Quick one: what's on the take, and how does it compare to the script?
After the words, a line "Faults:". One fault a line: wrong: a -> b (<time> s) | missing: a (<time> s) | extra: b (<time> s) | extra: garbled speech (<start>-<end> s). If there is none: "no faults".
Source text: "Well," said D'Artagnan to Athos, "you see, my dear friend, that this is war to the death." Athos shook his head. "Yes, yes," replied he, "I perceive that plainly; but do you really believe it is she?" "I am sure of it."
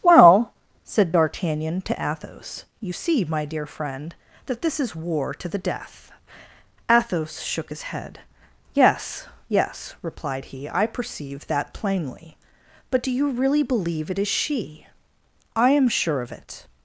"Well," said D'Artagnan to Athos, "you see, my dear friend, that this is war to the death." Athos shook his head. "Yes, yes," replied he, "I perceive that plainly; but do you really believe it is she?" "I am sure of it."
Faults:
no faults